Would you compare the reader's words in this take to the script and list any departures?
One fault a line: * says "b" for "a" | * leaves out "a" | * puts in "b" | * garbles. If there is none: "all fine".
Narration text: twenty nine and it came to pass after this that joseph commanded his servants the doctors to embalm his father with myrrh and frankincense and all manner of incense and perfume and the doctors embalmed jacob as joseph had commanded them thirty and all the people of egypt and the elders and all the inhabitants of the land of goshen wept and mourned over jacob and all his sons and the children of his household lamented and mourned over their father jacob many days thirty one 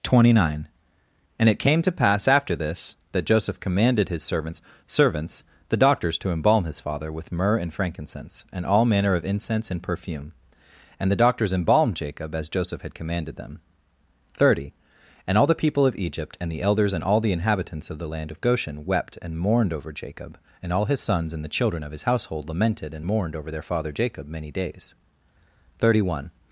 * puts in "servants"